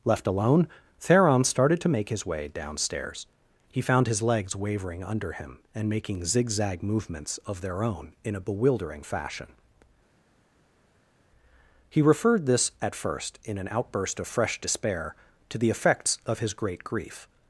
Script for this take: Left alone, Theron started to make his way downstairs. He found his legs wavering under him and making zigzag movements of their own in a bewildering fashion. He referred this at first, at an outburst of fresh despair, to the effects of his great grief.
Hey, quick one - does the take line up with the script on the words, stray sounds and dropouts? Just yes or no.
no